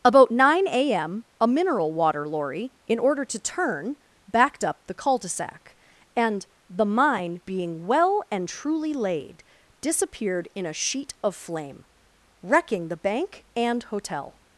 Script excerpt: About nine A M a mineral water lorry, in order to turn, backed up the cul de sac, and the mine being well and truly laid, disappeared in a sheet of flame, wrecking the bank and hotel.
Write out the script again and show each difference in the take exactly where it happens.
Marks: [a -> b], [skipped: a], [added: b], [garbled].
About nine A M a mineral water lorry, in order to turn, backed up the cul de sac, and the mine being well and truly laid, disappeared in a sheet of flame, wrecking the bank and hotel.